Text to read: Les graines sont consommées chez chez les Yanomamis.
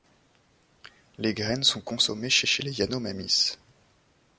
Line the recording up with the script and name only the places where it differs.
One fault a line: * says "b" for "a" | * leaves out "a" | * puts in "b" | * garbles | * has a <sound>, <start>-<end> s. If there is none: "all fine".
all fine